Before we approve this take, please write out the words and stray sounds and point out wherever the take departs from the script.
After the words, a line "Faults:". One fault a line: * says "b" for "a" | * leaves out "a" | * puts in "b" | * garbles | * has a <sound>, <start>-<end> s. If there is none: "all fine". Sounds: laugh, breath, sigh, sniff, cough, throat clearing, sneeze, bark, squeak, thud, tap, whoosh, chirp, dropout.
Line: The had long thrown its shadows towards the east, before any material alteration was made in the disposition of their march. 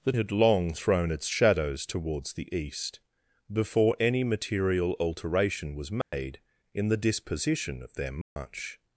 The had long thrown its shadows towards the east, before any material alteration was made in the disposition of their march.
Faults:
* has a dropout, 6.0-6.1 s
* has a dropout, 8.2-8.4 s